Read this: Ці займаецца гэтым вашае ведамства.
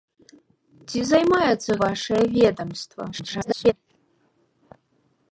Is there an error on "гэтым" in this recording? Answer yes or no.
yes